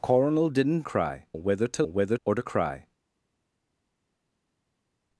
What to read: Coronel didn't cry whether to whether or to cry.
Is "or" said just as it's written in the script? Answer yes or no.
yes